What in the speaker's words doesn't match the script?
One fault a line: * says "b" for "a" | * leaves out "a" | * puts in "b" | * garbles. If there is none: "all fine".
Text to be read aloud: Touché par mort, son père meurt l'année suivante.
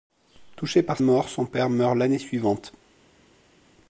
all fine